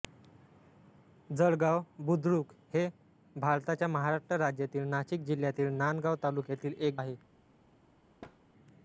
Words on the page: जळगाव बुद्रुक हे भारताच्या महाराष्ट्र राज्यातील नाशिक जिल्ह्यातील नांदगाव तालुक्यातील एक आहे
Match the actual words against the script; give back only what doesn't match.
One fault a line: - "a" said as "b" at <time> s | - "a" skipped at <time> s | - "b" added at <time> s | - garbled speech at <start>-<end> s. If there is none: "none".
none